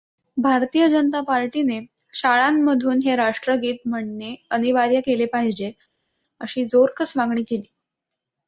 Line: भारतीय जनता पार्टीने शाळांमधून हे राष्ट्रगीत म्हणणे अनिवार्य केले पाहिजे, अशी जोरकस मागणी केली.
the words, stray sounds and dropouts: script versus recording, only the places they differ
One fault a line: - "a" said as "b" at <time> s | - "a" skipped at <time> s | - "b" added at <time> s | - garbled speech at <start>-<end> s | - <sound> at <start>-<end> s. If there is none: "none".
none